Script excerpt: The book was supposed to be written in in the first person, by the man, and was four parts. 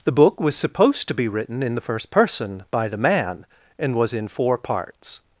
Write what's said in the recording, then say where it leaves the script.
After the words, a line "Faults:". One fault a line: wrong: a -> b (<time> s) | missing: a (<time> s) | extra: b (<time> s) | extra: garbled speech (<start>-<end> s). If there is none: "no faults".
The book was supposed to be written in the first person, by the man, and was in four parts.
Faults:
missing: in (1.8 s)
extra: in (4.1 s)